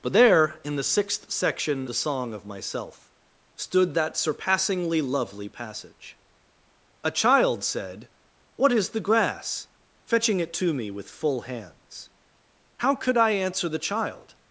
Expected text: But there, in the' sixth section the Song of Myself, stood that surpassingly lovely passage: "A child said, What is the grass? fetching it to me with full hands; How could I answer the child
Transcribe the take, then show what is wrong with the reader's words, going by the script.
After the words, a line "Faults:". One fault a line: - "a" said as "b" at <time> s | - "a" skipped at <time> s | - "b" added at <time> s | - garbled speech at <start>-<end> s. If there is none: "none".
But there, in the' sixth section the Song of Myself, stood that surpassingly lovely passage: "A child said, What is the grass? fetching it to me with full hands; How could I answer the child
Faults:
none